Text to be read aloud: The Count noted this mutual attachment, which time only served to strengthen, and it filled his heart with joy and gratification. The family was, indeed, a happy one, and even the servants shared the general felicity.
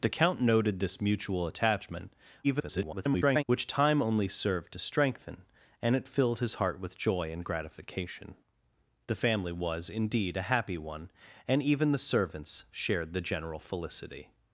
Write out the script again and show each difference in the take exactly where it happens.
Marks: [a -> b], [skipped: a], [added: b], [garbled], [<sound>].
The Count noted this mutual attachment, [garbled] which time only served to strengthen, and it filled his heart with joy and gratification. The family was, indeed, a happy one, and even the servants shared the general felicity.